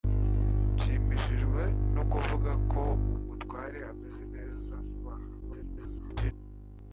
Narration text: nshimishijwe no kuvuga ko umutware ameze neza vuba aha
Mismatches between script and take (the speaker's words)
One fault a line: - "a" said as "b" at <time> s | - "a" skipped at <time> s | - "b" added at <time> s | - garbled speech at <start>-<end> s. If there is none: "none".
- garbled speech at 5.4-6.3 s